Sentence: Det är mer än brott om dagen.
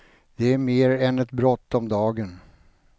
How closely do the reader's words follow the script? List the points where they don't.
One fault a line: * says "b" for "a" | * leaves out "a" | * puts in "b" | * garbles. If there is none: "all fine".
* puts in "ett"